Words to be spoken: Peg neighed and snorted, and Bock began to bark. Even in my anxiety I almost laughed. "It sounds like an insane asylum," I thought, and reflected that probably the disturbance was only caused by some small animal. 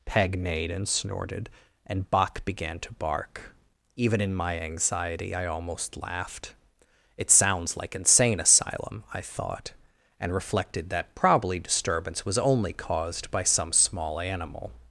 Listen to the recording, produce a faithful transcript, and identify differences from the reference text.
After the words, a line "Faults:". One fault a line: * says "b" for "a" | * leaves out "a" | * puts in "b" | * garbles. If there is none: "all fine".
Peg neighed and snorted, and Bock began to bark. Even in my anxiety I almost laughed. "It sounds like insane asylum," I thought, and reflected that probably disturbance was only caused by some small animal.
Faults:
* leaves out "an"
* leaves out "the"